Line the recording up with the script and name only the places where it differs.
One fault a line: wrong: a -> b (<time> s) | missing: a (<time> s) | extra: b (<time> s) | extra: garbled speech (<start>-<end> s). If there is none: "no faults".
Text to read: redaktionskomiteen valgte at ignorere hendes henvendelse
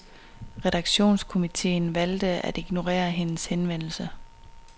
no faults